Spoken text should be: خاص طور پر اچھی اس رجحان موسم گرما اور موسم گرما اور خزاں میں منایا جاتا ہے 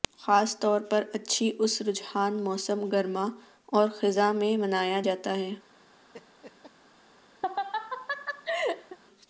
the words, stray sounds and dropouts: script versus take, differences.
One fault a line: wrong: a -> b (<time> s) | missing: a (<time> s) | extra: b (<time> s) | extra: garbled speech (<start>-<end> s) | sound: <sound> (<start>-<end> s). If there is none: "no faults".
missing: موسم گرما اور (3.9 s)
sound: laugh (6.1-6.7 s)
sound: laugh (7.4-9.0 s)